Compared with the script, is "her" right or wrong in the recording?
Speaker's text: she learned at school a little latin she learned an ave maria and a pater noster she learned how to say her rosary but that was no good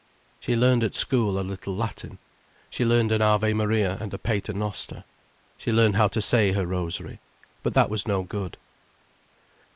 right